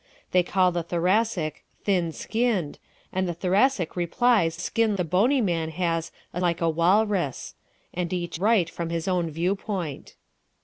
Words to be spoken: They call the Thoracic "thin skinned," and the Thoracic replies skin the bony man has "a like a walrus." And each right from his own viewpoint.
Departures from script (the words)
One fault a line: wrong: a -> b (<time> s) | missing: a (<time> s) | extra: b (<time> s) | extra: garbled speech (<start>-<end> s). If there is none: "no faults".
no faults